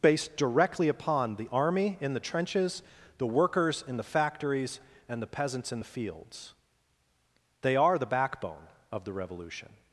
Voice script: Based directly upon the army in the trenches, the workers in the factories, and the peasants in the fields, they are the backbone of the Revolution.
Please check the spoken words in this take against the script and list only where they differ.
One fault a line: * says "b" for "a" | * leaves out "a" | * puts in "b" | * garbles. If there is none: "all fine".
all fine